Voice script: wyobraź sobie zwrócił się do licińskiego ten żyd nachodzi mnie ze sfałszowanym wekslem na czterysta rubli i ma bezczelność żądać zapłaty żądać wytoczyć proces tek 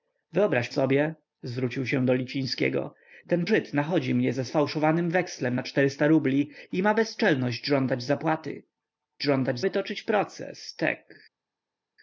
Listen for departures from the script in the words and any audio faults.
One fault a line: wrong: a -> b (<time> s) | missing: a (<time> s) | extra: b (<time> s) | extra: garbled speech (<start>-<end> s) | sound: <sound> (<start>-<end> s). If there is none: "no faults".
no faults